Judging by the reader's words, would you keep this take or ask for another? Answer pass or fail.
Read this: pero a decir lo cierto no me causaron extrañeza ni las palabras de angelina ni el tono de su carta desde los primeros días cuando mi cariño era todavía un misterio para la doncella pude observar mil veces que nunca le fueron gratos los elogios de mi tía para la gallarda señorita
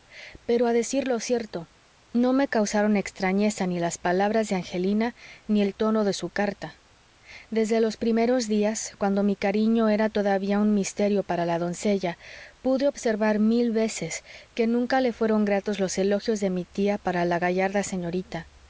pass